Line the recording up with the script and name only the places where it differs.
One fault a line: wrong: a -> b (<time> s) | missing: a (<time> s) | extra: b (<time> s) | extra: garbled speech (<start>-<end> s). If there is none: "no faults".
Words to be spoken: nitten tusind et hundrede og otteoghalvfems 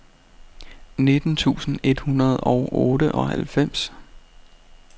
no faults